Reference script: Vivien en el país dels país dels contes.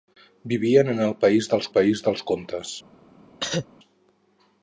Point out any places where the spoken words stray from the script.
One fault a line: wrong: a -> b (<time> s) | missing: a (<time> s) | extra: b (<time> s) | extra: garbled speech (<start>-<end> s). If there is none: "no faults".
no faults